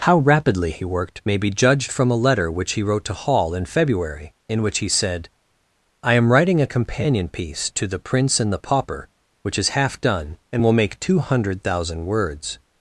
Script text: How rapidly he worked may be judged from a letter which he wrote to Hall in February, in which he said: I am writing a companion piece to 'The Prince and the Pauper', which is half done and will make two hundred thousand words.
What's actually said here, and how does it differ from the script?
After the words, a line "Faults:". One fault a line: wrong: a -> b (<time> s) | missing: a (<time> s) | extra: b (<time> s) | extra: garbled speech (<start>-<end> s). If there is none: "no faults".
How rapidly he worked may be judged from a letter which he wrote to Hall in February, in which he said: I am writing a companion piece to 'The Prince and the Pauper', which is half done and will make two hundred thousand words.
Faults:
no faults